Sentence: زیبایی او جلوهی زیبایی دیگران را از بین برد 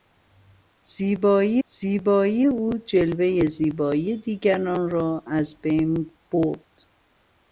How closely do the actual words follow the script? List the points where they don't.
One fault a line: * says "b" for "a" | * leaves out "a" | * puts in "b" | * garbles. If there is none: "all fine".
* puts in "زیبایی"